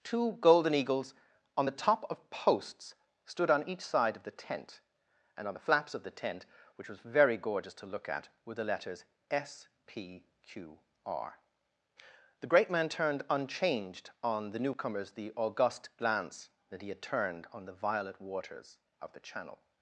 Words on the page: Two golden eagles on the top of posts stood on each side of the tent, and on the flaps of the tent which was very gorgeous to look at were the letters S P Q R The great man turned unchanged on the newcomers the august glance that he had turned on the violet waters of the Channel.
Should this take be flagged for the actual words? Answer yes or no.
no